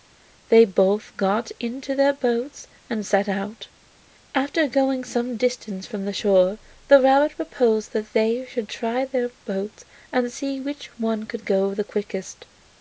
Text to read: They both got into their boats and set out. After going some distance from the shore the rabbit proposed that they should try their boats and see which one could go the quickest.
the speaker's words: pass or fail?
pass